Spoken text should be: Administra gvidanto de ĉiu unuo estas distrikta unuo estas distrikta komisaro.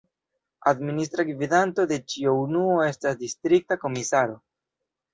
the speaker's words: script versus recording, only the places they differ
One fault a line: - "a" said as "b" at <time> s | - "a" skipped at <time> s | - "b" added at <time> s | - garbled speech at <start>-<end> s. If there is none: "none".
- "unuo estas distrikta" skipped at 3.8 s